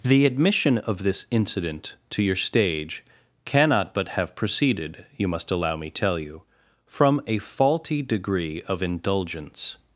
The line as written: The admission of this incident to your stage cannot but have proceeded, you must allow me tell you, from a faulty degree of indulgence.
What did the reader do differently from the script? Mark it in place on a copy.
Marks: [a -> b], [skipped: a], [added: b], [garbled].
The admission of this incident to your stage cannot but have proceeded, you must allow me tell you, from a faulty degree of indulgence.